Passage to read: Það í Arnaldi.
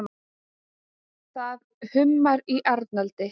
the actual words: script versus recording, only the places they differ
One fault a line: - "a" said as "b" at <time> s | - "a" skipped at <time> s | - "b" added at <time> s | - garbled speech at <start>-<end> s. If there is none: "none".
- "hummar" added at 1.9 s